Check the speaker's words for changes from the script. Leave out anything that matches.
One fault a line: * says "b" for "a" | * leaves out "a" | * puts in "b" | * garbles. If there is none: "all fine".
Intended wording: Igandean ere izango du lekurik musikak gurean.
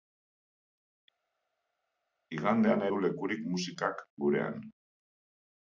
* leaves out "ere izango"